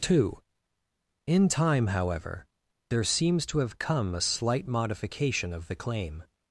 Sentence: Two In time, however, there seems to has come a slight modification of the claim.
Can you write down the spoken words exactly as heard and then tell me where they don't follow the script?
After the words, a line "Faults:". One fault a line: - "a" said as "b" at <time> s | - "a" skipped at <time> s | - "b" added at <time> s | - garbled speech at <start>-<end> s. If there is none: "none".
Two In time, however, there seems to have come a slight modification of the claim.
Faults:
- "has" said as "have" at 3.6 s